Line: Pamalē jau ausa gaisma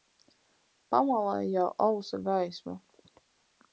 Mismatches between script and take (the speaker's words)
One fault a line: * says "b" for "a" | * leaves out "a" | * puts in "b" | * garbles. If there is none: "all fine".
all fine